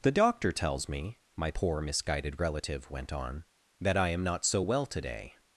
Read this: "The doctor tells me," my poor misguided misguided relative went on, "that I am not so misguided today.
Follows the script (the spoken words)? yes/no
no